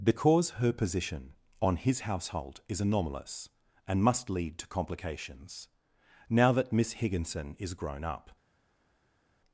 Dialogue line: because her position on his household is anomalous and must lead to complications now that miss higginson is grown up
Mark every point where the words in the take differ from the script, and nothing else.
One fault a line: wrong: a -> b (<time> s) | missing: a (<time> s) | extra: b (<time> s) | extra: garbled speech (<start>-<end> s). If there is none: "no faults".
no faults